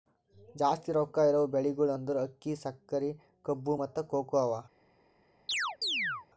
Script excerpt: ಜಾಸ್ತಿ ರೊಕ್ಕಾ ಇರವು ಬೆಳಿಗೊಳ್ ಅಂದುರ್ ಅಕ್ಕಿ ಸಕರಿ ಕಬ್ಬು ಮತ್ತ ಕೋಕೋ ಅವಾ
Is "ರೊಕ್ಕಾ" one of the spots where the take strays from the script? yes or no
no